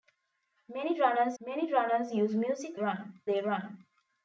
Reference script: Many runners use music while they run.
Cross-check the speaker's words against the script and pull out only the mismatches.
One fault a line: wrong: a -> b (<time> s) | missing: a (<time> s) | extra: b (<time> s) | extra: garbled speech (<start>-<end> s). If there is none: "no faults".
extra: many runners (1.4 s)
wrong: while -> run (2.8 s)